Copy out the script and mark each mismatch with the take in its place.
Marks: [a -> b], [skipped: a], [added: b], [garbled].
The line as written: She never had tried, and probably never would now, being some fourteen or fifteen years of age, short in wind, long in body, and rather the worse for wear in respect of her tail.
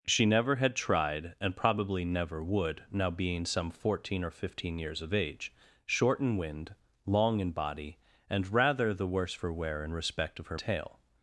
She never had tried, and probably never would now, being some fourteen or fifteen years of age, short in wind, long in body, and rather the worse for wear in respect of her tail.